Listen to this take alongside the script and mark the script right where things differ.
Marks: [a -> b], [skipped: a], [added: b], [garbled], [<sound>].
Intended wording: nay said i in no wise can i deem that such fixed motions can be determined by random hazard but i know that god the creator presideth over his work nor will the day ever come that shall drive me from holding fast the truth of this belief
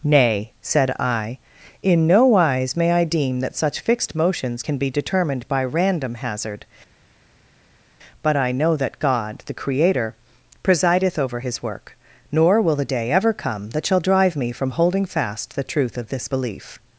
nay said i in no wise [can -> may] i deem that such fixed motions can be determined by random hazard but i know that god the creator presideth over his work nor will the day ever come that shall drive me from holding fast the truth of this belief